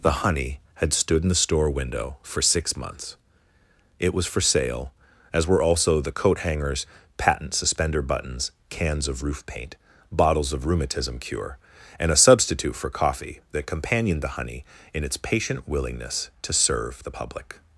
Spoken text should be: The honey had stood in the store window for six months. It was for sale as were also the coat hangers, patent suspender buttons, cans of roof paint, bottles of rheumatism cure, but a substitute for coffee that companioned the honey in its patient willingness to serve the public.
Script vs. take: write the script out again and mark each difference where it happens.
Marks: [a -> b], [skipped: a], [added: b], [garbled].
The honey had stood in the store window for six months. It was for sale as were also the coat hangers, patent suspender buttons, cans of roof paint, bottles of rheumatism cure, [but -> and] a substitute for coffee that companioned the honey in its patient willingness to serve the public.